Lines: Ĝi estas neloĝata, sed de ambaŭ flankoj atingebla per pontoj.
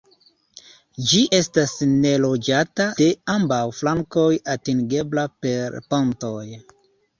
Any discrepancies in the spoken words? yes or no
yes